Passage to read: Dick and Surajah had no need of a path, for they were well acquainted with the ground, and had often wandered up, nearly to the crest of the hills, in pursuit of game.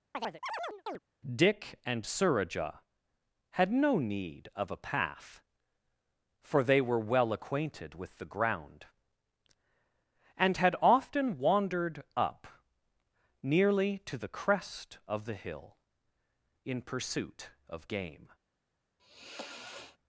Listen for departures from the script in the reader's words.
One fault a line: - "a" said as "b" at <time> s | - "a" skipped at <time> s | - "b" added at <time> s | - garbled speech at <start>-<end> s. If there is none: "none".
- "hills" said as "hill" at 15.4 s